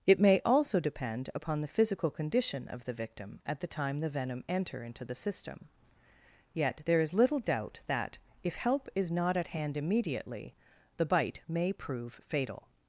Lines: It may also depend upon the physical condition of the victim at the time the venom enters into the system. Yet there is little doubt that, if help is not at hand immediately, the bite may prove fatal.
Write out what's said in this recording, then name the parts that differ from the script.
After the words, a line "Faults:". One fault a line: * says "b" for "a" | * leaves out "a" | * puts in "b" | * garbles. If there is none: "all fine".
It may also depend upon the physical condition of the victim at the time the venom enter into the system. Yet there is little doubt that, if help is not at hand immediately, the bite may prove fatal.
Faults:
* says "enter" for "enters"